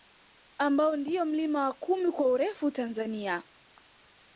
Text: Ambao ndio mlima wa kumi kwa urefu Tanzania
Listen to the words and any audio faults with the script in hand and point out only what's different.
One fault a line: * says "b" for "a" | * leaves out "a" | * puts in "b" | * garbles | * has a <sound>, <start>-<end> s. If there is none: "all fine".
all fine